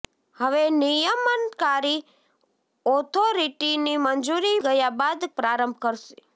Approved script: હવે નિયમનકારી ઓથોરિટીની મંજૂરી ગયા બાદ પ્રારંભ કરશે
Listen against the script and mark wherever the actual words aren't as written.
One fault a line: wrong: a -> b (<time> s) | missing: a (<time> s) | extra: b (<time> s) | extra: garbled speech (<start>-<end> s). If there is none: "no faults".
no faults